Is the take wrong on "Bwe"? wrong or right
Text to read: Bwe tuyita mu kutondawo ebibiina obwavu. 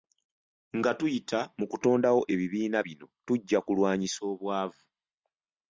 wrong